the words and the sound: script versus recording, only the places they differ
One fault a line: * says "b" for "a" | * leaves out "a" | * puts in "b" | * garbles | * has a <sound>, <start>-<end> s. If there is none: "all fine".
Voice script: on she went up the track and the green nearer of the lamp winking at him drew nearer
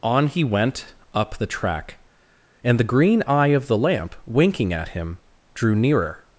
* says "he" for "she"
* says "eye" for "nearer"